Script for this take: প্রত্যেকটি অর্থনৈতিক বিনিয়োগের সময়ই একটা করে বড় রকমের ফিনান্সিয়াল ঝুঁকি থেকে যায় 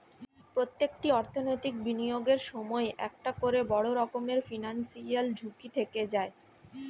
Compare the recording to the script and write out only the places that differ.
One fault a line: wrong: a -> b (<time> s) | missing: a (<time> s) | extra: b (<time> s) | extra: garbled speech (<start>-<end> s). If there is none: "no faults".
no faults